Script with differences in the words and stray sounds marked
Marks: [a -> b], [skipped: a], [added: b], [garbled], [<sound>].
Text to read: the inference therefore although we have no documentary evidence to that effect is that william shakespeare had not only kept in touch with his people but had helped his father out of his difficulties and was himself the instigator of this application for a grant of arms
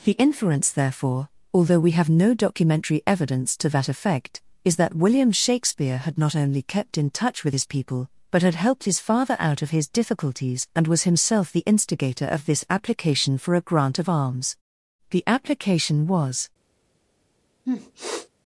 the inference therefore although we have no documentary evidence to that effect is that william shakespeare had not only kept in touch with his people but had helped his father out of his difficulties and was himself the instigator of this application for a grant of arms [added: the application was] [sniff]